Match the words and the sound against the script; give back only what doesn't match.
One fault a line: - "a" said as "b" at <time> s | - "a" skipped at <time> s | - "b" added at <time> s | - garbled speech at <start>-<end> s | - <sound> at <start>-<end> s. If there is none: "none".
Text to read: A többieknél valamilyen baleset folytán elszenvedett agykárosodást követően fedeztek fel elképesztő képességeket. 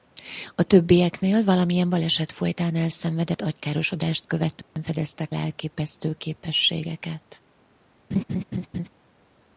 - dropout at 4.6-4.8 s
- "fel" skipped at 5.3 s
- laugh at 8.1-8.9 s